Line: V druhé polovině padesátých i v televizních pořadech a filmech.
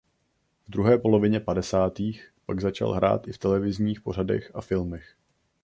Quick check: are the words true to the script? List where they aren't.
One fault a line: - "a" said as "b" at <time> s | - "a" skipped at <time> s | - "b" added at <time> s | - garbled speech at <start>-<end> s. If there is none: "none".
- "pak začal hrát" added at 2.4 s